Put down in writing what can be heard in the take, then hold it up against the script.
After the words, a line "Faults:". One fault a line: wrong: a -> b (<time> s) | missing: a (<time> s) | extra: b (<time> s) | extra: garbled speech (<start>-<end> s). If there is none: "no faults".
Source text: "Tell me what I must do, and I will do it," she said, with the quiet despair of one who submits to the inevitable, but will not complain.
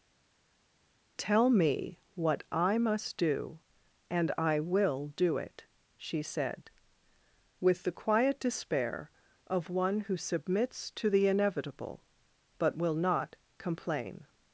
"Tell me what I must do, and I will do it," she said, with the quiet despair of one who submits to the inevitable, but will not complain.
Faults:
no faults